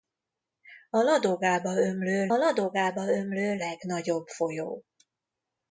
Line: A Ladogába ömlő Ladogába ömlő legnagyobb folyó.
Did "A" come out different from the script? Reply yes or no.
no